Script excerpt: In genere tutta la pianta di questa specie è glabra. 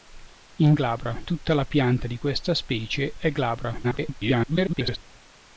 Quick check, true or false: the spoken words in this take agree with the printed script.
false